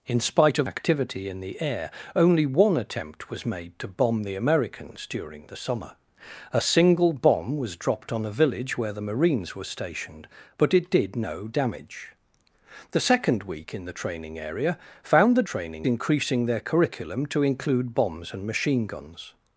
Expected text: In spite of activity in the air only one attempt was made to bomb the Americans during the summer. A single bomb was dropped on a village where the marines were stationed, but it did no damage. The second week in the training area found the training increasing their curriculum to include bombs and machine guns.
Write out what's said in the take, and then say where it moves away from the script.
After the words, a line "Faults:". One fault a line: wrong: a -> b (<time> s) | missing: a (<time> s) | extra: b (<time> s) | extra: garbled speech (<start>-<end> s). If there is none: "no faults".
In spite of activity in the air only one attempt was made to bomb the Americans during the summer. A single bomb was dropped on a village where the marines were stationed, but it did no damage. The second week in the training area found the training increasing their curriculum to include bombs and machine guns.
Faults:
no faults